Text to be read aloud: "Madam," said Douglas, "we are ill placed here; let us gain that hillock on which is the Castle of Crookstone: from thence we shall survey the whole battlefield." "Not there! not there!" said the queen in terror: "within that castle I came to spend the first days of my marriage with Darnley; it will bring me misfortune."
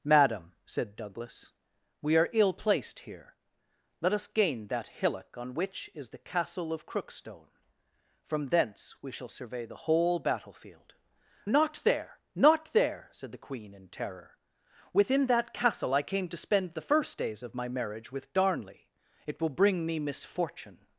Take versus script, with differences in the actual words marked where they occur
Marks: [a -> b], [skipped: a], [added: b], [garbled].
"Madam," said Douglas, "we are ill placed here; let us gain that hillock on which is the Castle of Crookstone: from thence we shall survey the whole battlefield." "Not there! not there!" said the queen in terror: "within that castle I came to spend the first days of my marriage with Darnley; it will bring me misfortune."